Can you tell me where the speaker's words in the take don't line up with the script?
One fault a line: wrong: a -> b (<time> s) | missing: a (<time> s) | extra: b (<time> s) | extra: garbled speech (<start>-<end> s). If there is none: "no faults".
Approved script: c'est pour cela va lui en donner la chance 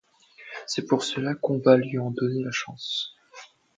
extra: qu'on (1.4 s)